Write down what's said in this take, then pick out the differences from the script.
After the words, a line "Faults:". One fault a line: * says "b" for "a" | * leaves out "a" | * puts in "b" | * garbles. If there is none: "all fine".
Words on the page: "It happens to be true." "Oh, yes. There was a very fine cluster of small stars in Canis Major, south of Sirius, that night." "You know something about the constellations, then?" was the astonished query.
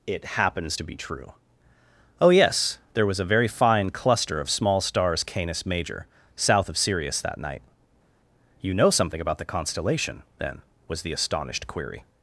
"It happens to be true." "Oh, yes. There was a very fine cluster of small stars Canis Major, south of Sirius, that night." "You know something about the constellation, then?" was the astonished query.
Faults:
* leaves out "in"
* says "constellation" for "constellations"